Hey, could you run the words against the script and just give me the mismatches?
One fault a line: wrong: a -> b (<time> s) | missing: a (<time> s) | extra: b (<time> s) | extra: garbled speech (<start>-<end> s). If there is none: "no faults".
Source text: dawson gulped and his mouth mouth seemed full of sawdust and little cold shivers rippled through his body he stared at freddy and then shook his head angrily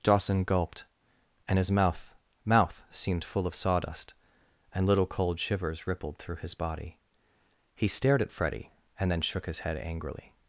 no faults